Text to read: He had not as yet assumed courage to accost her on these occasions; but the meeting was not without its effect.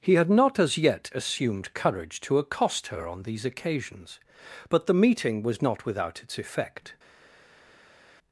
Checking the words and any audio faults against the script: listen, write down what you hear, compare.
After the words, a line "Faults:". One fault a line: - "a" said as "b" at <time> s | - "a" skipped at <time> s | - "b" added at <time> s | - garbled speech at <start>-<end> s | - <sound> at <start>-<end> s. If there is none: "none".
He had not as yet assumed courage to accost her on these occasions; but the meeting was not without its effect.
Faults:
none